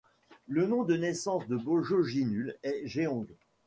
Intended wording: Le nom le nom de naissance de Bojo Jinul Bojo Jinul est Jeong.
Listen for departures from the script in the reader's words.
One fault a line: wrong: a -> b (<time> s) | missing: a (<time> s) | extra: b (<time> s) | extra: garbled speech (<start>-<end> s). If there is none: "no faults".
missing: le nom (0.8 s)
missing: Bojo Jinul (2.6 s)